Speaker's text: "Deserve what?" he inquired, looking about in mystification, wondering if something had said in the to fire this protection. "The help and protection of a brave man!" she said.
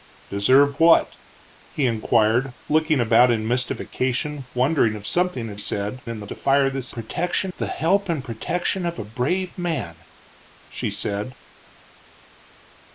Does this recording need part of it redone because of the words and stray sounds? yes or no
no